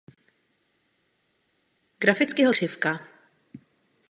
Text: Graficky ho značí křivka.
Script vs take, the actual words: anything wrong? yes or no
yes